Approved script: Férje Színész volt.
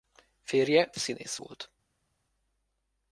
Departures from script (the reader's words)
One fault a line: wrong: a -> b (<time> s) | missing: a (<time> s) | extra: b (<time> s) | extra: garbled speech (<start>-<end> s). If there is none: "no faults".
no faults